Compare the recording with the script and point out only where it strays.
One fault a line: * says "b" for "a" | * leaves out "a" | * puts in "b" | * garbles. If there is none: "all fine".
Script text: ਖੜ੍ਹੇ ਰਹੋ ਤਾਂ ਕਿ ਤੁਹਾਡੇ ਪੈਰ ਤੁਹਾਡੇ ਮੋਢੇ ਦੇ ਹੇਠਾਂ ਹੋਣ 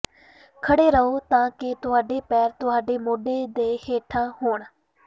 all fine